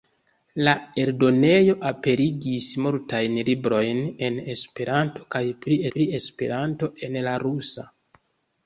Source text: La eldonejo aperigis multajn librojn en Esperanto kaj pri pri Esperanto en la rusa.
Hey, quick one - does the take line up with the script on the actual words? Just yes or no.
yes